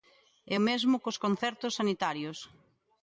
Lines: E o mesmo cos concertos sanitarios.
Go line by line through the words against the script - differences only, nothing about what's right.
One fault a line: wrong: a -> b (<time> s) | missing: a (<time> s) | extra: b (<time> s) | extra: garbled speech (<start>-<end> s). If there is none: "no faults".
no faults